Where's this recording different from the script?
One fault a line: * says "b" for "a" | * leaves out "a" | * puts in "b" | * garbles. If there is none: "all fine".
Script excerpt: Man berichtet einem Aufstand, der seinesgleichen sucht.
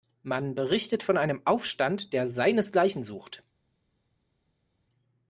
* puts in "von"